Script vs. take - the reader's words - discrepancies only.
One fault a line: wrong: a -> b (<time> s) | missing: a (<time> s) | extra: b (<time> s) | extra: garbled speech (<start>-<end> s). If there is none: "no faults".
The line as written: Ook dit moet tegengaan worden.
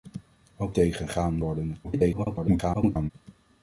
missing: dit moet (0.8 s)
extra: garbled speech (1.8-3.1 s)